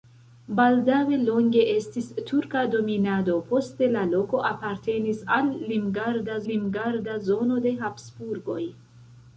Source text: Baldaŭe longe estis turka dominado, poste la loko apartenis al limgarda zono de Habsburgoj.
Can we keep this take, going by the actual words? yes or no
no